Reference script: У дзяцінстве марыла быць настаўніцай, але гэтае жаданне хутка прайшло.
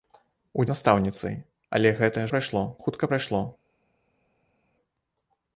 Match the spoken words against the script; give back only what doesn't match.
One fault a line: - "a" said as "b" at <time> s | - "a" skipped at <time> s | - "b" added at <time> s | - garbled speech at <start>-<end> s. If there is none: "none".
- "дзяцінстве марыла быць" skipped at 0.6 s
- "жаданне" said as "прайшло" at 2.3 s